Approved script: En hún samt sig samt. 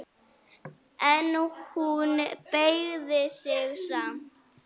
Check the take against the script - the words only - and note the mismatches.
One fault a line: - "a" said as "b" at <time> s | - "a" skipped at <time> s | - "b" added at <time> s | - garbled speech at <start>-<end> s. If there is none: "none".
- "samt" said as "beygði" at 2.5 s